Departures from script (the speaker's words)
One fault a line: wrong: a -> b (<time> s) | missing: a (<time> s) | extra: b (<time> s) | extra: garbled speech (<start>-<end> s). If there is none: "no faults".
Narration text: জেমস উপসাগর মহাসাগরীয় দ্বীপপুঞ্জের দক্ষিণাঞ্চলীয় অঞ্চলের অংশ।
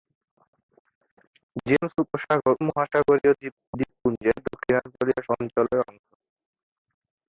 no faults